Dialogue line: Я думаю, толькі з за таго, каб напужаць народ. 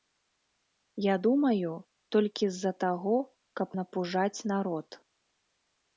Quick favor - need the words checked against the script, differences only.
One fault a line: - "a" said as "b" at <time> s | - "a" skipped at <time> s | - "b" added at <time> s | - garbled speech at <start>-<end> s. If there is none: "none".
none